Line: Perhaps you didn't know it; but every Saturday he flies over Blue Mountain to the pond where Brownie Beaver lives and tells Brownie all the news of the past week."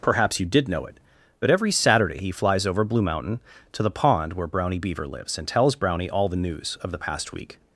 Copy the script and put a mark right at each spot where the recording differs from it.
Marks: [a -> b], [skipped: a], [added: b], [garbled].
Perhaps you [didn't -> did] know it; but every Saturday he flies over Blue Mountain to the pond where Brownie Beaver lives and tells Brownie all the news of the past week."